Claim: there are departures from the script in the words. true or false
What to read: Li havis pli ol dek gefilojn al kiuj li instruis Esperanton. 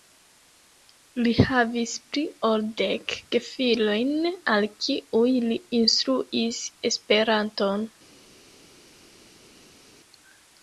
false